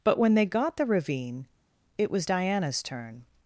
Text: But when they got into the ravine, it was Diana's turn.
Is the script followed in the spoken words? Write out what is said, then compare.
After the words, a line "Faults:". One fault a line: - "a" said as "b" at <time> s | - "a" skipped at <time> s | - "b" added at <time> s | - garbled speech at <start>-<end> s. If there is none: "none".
But when they got the ravine, it was Diana's turn.
Faults:
- "into" skipped at 0.8 s